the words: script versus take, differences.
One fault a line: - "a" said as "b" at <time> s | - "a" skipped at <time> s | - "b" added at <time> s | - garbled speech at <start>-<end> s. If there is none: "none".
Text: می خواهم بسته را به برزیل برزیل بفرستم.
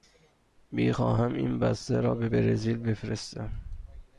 - "این" added at 1.3 s
- "برزیل" skipped at 2.8 s